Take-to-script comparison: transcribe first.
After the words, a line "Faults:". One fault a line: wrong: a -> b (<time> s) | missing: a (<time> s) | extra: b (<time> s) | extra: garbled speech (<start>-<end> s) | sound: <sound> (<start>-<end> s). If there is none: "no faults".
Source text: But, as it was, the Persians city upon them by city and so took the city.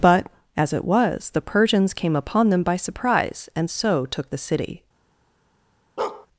But, as it was, the Persians came upon them by surprise and so took the city.
Faults:
wrong: city -> came (1.9 s)
wrong: city -> surprise (2.8 s)
sound: bark (6.0-6.3 s)